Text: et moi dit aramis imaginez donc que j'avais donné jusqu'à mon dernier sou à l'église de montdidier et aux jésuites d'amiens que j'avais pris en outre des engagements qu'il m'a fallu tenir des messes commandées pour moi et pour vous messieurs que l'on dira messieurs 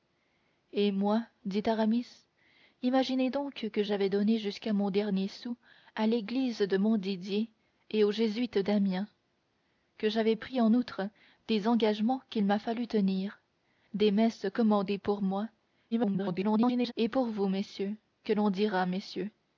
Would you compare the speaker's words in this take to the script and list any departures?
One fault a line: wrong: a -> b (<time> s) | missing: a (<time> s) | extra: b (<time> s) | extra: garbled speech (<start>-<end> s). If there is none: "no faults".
extra: garbled speech (15.9-16.9 s)